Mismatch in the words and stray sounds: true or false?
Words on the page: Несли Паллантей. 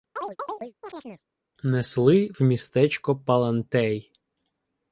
true